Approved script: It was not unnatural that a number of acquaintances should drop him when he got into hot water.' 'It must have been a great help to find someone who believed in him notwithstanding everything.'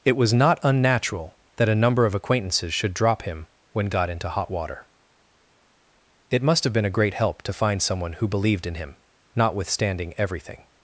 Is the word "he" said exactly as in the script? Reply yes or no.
no